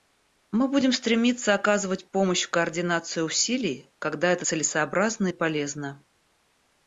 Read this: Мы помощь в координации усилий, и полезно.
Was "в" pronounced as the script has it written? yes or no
yes